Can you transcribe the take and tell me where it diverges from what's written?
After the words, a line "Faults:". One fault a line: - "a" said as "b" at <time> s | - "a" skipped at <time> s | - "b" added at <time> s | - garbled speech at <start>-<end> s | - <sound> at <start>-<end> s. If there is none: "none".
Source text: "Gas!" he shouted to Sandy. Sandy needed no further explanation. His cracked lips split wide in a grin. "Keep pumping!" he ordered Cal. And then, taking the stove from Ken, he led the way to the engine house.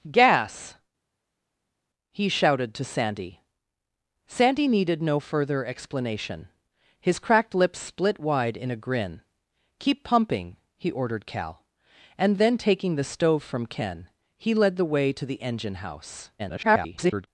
"Gas!" he shouted to Sandy. Sandy needed no further explanation. His cracked lips split wide in a grin. "Keep pumping!" he ordered Cal. And then, taking the stove from Ken, he led the way to the engine house. [garbled]
Faults:
- garbled speech at 16.4-17.3 s